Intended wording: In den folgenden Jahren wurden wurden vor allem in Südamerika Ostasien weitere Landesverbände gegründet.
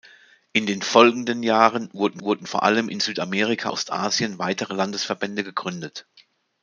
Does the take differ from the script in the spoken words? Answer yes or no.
no